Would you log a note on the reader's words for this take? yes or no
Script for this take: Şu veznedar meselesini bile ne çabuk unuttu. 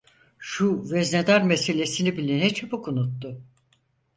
no